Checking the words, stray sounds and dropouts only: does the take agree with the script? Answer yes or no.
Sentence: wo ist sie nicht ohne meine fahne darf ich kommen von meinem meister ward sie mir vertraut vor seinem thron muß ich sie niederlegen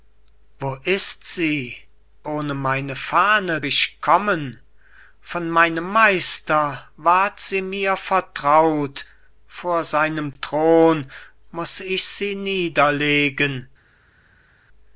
no